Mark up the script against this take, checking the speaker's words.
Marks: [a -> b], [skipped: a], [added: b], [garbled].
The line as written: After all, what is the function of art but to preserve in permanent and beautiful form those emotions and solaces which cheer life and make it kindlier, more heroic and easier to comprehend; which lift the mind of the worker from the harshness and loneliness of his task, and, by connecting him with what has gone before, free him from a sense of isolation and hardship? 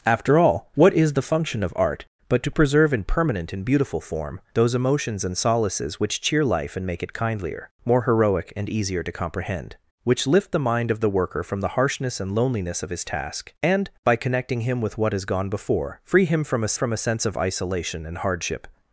After all, what is the function of art but to preserve in permanent and beautiful form those emotions and solaces which cheer life and make it kindlier, more heroic and easier to comprehend; which lift the mind of the worker from the harshness and loneliness of his task, and, by connecting him with what has gone before, free him from a [added: from a] sense of isolation and hardship?